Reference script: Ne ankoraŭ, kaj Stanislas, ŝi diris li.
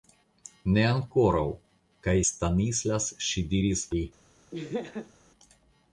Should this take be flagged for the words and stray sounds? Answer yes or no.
yes